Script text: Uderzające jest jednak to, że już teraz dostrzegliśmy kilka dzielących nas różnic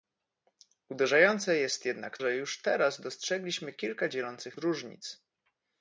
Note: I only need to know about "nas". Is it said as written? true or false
false